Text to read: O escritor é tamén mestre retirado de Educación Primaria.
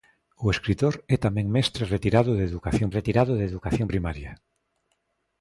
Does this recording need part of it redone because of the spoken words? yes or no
yes